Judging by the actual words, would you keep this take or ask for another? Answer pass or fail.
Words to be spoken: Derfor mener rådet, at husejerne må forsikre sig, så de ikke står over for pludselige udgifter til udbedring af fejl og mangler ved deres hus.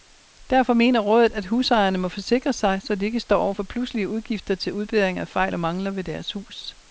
pass